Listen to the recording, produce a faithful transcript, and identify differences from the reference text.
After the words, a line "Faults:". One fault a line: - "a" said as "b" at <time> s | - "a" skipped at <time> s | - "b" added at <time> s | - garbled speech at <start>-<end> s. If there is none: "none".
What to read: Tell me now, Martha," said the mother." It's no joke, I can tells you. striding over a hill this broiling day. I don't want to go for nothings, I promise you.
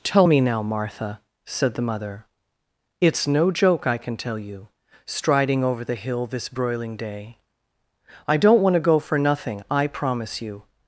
Tell me now, Martha," said the mother." It's no joke, I can tell you. striding over the hill this broiling day. I don't want to go for nothing, I promise you.
Faults:
- "tells" said as "tell" at 4.2 s
- "a" said as "the" at 5.8 s
- "nothings" said as "nothing" at 9.2 s